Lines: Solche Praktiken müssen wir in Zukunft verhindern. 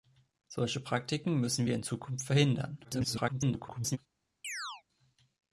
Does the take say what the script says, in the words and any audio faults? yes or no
no